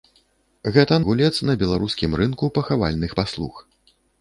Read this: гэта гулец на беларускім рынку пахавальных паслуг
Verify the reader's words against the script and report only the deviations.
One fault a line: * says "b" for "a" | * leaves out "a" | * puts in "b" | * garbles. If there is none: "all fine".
all fine